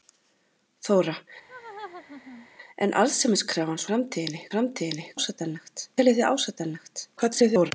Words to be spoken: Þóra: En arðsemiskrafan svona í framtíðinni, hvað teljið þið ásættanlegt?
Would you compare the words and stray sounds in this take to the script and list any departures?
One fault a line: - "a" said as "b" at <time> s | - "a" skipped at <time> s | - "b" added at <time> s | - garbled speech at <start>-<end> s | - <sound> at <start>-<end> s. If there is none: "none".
- laugh at 1.5-2.5 s
- "svona" said as "framtíðinni" at 3.9 s
- "hvað" said as "ásættanlegt" at 5.1 s
- garbled speech at 7.2-7.7 s